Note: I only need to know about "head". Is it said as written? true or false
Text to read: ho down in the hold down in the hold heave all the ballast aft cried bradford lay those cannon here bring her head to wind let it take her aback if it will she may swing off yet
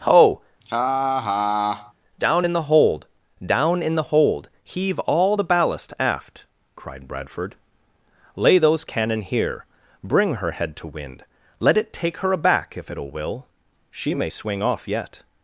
true